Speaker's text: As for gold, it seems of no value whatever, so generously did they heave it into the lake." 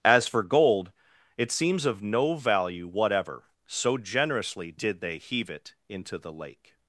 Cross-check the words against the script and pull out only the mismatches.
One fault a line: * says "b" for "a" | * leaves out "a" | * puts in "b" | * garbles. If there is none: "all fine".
all fine